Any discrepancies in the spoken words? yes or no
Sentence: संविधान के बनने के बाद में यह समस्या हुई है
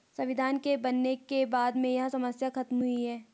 yes